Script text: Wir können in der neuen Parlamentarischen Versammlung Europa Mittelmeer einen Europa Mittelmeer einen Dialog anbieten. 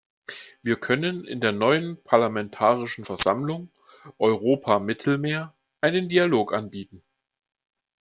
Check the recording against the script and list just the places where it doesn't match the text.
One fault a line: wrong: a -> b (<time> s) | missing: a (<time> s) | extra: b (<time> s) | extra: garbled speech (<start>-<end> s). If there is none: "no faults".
missing: Europa Mittelmeer einen (6.1 s)